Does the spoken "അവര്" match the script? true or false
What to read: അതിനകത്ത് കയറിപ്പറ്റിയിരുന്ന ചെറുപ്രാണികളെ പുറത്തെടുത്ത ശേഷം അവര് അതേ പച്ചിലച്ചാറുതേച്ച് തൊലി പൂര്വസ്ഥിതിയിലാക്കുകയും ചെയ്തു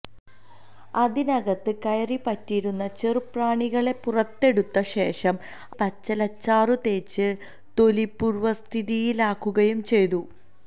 false